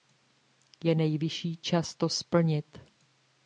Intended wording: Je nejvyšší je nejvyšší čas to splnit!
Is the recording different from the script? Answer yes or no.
yes